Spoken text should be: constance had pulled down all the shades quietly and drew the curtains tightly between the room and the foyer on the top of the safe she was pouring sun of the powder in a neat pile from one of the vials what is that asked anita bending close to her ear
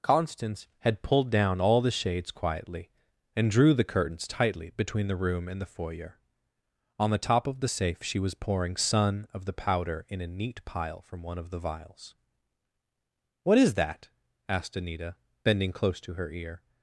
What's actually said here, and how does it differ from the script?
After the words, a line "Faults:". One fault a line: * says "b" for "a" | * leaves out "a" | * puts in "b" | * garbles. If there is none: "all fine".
constance had pulled down all the shades quietly and drew the curtains tightly between the room and the foyer on the top of the safe she was pouring sun of the powder in a neat pile from one of the vials what is that asked anita bending close to her ear
Faults:
all fine